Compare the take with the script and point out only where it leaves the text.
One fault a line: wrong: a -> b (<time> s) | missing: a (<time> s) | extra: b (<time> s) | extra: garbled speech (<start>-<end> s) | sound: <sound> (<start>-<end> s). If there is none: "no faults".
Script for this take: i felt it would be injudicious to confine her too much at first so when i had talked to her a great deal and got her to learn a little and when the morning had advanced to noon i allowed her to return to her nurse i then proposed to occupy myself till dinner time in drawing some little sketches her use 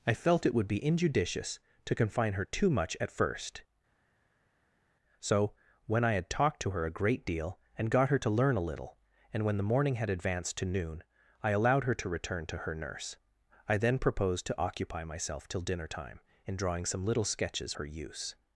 no faults